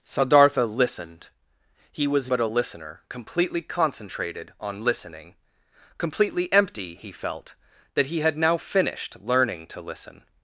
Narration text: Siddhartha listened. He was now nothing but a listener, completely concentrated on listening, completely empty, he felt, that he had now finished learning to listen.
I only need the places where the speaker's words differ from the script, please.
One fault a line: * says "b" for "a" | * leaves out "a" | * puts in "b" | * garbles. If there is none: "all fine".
* leaves out "now nothing"